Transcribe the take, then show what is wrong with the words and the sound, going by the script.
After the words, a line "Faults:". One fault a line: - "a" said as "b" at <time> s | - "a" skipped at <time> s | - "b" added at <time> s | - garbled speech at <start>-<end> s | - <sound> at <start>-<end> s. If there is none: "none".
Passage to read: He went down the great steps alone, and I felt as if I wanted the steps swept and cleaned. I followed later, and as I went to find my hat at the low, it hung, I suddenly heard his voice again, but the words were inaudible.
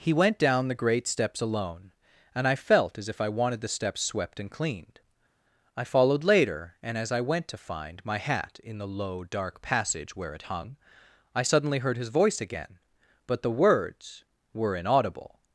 He went down the great steps alone, and I felt as if I wanted the steps swept and cleaned. I followed later, and as I went to find my hat in the low, dark passage where it hung, I suddenly heard his voice again, but the words were inaudible.
Faults:
- "at" said as "in" at 8.6 s
- "dark passage where" added at 9.2 s